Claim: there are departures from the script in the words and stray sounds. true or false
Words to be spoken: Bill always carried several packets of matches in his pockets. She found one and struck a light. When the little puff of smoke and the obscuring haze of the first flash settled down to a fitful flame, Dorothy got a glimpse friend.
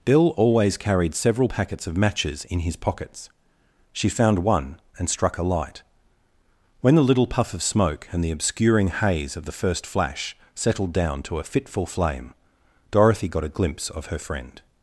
true